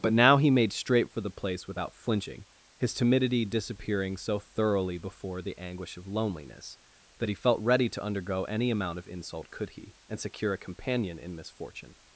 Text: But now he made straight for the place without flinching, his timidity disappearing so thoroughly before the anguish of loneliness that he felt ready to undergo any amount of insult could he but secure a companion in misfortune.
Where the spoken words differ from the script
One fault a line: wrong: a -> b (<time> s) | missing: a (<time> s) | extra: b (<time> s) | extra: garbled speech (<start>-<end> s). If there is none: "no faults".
wrong: but -> and (10.1 s)